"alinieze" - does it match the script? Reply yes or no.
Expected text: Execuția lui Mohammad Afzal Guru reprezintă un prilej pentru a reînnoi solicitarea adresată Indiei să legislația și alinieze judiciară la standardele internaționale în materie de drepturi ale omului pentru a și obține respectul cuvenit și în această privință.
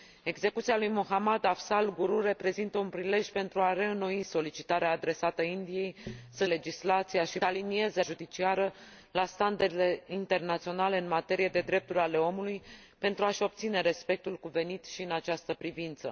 yes